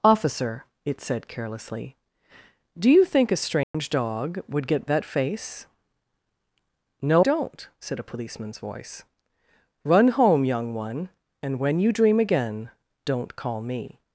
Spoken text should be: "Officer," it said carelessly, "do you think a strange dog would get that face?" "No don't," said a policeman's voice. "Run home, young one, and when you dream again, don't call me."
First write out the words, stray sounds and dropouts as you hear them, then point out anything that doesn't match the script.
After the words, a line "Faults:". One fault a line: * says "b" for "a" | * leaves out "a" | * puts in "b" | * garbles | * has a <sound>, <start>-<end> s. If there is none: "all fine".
"Officer," it said carelessly, "do you think a strange dog would get that face?" "No don't," said a policeman's voice. "Run home, young one, and when you dream again, don't call me."
Faults:
* has a dropout, 3.6-3.7 s